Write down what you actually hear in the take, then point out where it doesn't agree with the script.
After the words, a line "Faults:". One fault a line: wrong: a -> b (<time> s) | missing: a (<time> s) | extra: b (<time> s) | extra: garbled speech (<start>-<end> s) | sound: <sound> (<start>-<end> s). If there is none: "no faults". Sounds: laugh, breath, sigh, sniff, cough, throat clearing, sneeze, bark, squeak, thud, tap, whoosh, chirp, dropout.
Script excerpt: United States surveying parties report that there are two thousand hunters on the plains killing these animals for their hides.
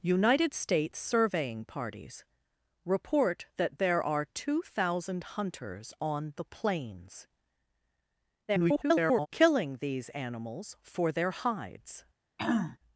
United States surveying parties report that there are two thousand hunters on the plains [garbled] killing these animals for their hides.
Faults:
extra: garbled speech (8.5-9.3 s)
sound: throat clearing (12.4-12.8 s)